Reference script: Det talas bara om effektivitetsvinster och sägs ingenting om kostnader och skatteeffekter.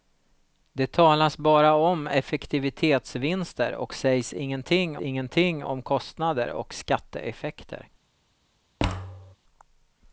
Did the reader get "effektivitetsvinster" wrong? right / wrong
right